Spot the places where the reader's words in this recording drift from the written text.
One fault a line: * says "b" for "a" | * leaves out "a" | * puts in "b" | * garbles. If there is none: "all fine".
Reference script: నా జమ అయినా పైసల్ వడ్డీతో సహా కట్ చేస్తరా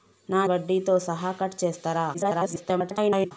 * leaves out "జమ అయినా పైసల్"
* garbles